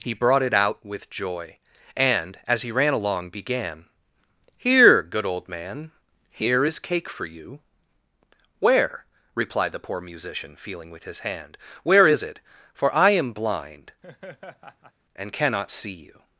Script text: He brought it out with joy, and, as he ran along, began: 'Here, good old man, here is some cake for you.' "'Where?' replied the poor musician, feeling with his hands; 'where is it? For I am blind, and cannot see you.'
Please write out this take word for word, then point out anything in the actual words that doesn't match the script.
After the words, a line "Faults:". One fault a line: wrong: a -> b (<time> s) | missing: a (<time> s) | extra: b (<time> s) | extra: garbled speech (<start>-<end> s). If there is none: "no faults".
He brought it out with joy, and, as he ran along, began: 'Here, good old man, here is cake for you.' "'Where?' replied the poor musician, feeling with his hand; 'where is it? For I am blind, and cannot see you.'
Faults:
missing: some (6.8 s)
wrong: hands -> hand (11.2 s)